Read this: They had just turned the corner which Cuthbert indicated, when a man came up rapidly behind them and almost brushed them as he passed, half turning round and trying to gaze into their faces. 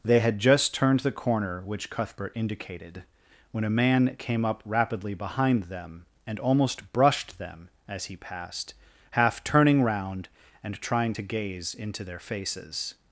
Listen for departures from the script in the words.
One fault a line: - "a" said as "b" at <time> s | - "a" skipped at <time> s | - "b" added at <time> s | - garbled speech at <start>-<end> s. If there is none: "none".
none